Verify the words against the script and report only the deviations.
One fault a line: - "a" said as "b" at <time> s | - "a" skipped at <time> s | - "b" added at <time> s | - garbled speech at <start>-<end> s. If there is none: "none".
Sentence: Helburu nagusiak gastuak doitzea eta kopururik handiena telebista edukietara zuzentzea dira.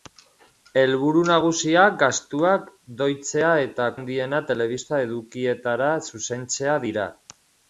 - "kopururik" skipped at 3.9 s